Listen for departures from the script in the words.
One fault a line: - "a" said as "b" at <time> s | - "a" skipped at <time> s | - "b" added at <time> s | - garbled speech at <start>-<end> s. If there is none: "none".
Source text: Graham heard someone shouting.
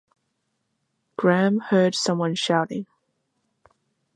none